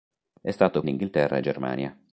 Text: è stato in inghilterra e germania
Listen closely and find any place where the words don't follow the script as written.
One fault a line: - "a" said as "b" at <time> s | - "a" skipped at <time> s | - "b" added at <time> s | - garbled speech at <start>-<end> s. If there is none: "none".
none